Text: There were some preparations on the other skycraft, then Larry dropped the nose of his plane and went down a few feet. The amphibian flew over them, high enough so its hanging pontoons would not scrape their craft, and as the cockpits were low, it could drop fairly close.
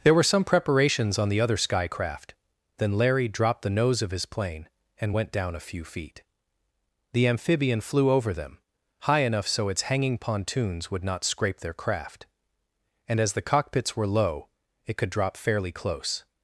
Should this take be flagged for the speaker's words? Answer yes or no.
no